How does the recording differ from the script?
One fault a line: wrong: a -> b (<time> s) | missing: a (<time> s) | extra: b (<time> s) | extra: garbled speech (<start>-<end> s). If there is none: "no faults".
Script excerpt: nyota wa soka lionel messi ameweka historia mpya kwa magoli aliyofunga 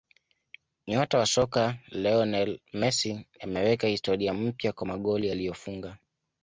no faults